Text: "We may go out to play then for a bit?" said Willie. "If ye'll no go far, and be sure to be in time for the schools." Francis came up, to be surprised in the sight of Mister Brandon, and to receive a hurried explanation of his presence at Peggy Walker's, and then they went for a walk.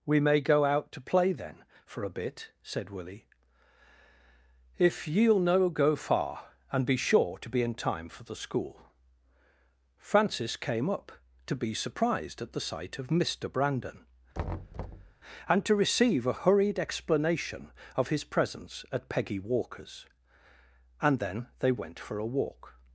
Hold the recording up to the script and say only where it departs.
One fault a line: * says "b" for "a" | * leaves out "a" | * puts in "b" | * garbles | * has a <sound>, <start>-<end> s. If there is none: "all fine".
* says "school" for "schools"
* says "at" for "in"
* has a thud, 14.3-15.1 s